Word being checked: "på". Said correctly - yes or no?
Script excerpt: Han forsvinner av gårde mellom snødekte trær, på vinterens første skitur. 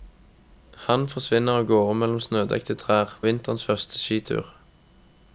no